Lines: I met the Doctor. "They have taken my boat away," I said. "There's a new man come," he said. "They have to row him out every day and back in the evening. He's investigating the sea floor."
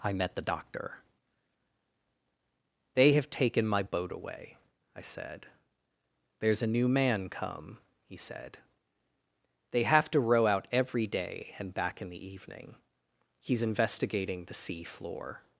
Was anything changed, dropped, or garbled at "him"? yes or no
yes